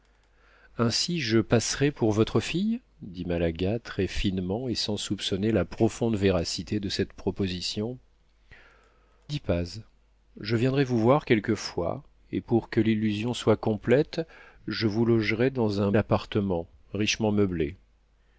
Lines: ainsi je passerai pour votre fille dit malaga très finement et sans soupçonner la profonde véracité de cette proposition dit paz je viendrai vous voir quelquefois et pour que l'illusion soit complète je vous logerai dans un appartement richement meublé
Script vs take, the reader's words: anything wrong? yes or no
no